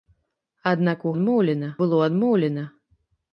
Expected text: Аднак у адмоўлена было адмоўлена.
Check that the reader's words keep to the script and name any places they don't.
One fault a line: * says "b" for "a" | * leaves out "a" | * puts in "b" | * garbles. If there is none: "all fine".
all fine